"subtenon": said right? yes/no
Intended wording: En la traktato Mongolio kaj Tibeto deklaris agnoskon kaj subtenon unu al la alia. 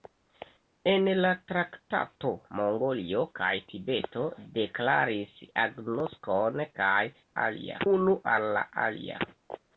no